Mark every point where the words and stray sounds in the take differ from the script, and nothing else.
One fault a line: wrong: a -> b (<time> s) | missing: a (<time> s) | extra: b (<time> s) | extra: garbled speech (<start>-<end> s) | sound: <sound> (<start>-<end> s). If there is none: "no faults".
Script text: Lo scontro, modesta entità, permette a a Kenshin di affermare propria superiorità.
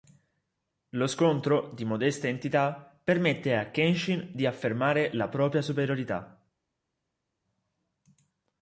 extra: di (1.7 s)
missing: a (3.7 s)
extra: la (5.1 s)